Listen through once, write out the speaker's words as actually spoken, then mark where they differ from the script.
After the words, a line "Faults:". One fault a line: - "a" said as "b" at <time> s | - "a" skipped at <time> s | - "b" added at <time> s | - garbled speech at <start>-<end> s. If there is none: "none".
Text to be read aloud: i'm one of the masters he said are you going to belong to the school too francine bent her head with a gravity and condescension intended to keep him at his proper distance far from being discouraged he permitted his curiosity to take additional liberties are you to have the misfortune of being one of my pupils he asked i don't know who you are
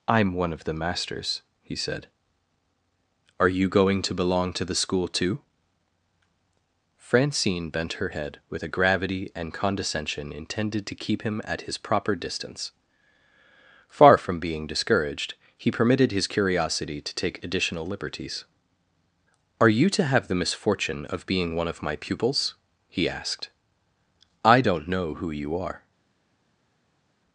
i'm one of the masters he said are you going to belong to the school too francine bent her head with a gravity and condescension intended to keep him at his proper distance far from being discouraged he permitted his curiosity to take additional liberties are you to have the misfortune of being one of my pupils he asked i don't know who you are
Faults:
none